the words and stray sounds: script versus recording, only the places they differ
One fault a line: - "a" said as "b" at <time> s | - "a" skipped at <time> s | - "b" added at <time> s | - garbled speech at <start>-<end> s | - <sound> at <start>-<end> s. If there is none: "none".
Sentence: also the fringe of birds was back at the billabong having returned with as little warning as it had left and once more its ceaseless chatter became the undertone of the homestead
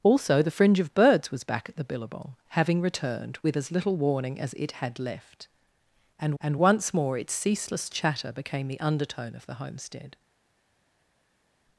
- "and" added at 6.4 s